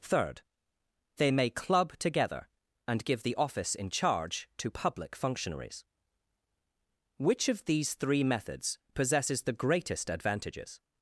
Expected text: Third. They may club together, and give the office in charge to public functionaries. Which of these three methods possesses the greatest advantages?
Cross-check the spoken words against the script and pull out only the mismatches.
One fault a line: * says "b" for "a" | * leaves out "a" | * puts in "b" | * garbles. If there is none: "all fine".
all fine